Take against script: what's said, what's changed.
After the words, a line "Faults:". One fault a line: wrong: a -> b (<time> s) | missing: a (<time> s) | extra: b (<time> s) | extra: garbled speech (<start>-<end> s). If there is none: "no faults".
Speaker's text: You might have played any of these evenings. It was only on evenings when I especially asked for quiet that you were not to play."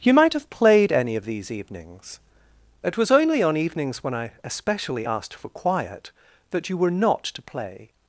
You might have played any of these evenings. It was only on evenings when I especially asked for quiet that you were not to play."
Faults:
no faults